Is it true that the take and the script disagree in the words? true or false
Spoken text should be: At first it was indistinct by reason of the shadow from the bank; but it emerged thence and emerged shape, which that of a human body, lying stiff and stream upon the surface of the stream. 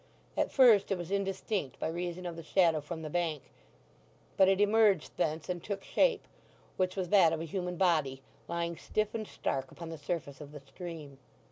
true